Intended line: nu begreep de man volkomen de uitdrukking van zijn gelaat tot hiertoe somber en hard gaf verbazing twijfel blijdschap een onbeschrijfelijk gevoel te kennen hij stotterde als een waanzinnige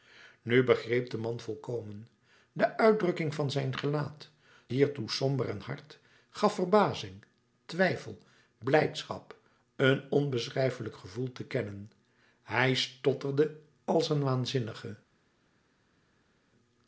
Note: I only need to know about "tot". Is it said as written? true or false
false